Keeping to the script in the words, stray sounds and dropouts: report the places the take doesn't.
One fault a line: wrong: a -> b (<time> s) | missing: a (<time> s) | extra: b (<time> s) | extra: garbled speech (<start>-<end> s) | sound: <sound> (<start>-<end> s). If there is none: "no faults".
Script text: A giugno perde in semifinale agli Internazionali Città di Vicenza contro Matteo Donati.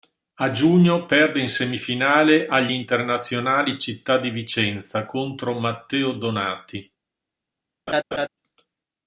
sound: laugh (7.9-8.3 s)